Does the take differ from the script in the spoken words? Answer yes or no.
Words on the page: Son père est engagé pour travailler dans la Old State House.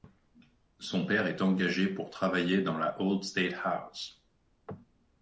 no